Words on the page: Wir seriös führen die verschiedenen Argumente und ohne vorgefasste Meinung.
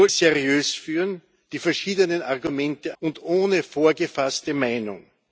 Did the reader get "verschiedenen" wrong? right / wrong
right